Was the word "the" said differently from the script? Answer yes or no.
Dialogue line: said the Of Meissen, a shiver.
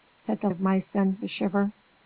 no